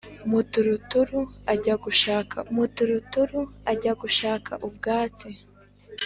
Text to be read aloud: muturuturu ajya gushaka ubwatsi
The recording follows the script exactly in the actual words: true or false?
false